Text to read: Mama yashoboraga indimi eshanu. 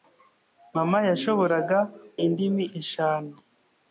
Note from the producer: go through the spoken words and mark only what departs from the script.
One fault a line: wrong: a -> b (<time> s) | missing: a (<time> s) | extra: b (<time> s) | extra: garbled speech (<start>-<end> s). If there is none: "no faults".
no faults